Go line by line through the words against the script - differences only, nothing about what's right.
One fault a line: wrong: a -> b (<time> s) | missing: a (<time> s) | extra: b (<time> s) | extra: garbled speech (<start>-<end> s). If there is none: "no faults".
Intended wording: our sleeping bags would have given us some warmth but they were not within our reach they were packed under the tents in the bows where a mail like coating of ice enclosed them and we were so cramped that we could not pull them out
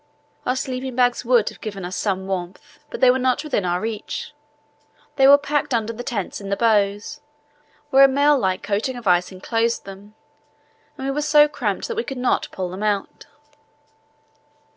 no faults